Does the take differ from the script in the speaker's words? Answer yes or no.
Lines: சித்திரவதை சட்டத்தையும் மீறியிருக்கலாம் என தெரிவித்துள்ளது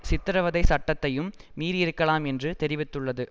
yes